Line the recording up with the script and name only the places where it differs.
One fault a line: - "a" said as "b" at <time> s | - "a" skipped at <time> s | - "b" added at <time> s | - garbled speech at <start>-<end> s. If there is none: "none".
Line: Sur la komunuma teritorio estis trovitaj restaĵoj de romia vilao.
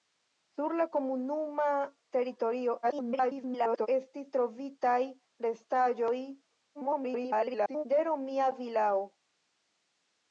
- garbled speech at 2.8-3.9 s
- garbled speech at 6.7-7.8 s